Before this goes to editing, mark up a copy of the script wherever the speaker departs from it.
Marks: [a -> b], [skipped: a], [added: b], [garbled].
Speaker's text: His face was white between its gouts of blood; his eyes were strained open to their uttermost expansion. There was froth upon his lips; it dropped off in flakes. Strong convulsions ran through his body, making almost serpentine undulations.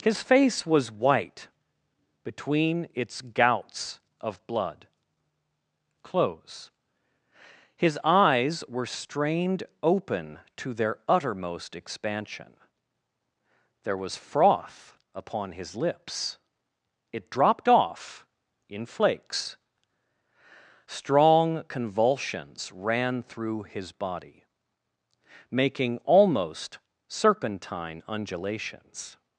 His face was white between its gouts of blood; [added: close] his eyes were strained open to their uttermost expansion. There was froth upon his lips; it dropped off in flakes. Strong convulsions ran through his body, making almost serpentine undulations.